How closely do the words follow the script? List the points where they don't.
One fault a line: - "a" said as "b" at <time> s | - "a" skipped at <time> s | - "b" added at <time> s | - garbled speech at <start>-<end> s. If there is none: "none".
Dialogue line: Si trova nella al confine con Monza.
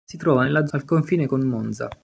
none